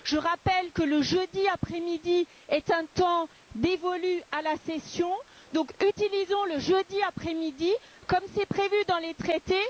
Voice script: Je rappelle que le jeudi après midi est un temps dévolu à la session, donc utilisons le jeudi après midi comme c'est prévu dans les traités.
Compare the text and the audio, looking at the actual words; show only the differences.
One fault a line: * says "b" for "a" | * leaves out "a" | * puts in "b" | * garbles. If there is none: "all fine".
all fine